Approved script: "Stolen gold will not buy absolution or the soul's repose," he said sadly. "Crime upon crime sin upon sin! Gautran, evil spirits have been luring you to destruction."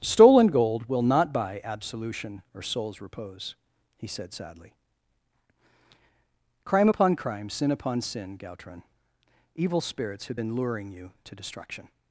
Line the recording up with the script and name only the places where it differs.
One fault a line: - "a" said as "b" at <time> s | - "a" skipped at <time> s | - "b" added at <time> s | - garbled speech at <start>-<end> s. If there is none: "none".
- "the" skipped at 2.6 s